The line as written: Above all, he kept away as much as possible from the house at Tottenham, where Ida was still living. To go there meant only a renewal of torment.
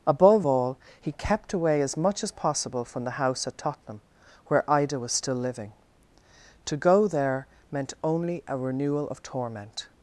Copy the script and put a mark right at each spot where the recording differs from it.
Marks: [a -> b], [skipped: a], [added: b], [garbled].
Above all, he kept away as much as possible from the house at Tottenham, where Ida was still living. To go there meant only a renewal of torment.